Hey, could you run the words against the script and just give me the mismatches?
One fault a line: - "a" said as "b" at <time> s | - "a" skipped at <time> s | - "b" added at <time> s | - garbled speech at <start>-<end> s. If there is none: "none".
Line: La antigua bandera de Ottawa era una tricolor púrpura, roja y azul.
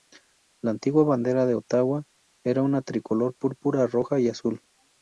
none